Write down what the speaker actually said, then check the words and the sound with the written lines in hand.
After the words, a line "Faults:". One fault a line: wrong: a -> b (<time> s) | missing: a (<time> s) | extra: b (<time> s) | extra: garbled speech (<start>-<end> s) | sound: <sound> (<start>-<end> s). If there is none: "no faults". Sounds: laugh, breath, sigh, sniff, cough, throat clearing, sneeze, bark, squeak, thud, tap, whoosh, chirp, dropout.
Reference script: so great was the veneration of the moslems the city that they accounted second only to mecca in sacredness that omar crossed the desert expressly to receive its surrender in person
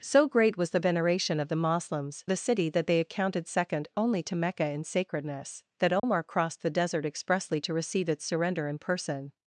so great was the veneration of the moslems the city that they accounted second only to mecca in sacredness that omar crossed the desert expressly to receive its surrender in person
Faults:
sound: dropout (6.0-6.0 s)